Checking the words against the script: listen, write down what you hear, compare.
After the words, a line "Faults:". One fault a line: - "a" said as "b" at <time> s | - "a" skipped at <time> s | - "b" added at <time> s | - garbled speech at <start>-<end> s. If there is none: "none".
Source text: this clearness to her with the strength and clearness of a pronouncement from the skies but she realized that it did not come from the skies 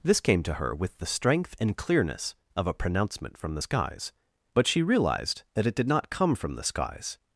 this came to her with the strength and clearness of a pronouncement from the skies but she realized that it did not come from the skies
Faults:
- "clearness" said as "came" at 0.2 s